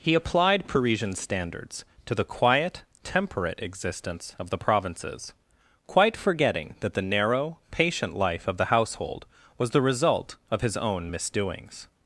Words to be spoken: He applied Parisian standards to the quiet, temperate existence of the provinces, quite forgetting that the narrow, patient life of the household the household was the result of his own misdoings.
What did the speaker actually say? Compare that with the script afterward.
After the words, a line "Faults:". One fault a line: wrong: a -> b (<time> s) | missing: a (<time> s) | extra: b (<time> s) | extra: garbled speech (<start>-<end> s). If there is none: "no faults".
He applied Parisian standards to the quiet, temperate existence of the provinces, quite forgetting that the narrow, patient life of the household was the result of his own misdoings.
Faults:
missing: the household (9.2 s)